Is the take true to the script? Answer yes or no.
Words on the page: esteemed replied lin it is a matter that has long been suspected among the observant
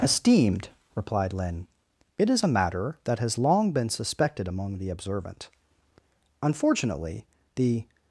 no